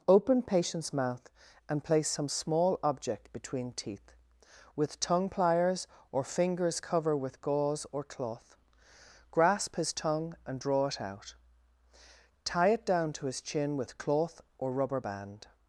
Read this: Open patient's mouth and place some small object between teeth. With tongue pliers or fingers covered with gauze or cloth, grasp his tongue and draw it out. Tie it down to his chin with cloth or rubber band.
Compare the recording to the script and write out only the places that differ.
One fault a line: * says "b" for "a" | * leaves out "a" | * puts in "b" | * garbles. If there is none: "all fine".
* says "cover" for "covered"